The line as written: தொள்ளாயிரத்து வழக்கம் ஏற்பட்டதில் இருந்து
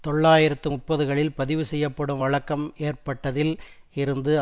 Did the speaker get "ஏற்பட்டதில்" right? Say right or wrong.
right